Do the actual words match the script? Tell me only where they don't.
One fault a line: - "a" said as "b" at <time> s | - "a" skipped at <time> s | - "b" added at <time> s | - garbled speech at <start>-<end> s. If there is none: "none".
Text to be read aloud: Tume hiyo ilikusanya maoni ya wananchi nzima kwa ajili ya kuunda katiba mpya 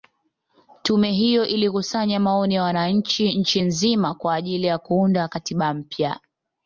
- "nchi" added at 3.4 s